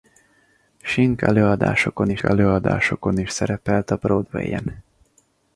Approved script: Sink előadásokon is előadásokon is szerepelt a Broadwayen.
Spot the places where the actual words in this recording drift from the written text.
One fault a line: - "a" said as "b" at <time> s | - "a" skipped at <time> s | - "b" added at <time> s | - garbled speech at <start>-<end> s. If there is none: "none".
none